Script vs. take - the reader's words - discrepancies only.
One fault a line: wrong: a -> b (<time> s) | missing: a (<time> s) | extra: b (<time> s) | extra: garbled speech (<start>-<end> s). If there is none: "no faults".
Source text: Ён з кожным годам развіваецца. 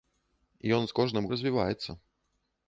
missing: годам (1.3 s)